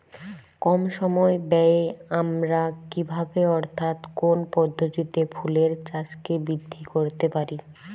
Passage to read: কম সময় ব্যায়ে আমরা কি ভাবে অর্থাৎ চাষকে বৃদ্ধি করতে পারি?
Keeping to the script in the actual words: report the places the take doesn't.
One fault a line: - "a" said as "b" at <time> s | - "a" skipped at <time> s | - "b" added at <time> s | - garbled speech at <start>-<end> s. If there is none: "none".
- "কোন পদ্ধতিতে ফুলের" added at 4.2 s